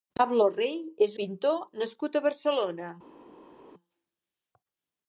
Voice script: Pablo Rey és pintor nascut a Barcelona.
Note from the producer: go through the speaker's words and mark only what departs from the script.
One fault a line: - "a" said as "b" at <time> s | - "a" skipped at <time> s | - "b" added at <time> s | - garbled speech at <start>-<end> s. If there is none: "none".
none